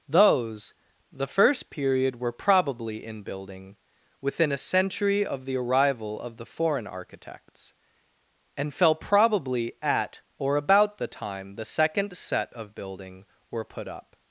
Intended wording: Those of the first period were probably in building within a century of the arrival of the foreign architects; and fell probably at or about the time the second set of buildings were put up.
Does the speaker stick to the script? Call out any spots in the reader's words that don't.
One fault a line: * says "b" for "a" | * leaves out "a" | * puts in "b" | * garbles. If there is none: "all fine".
* leaves out "of"
* says "building" for "buildings"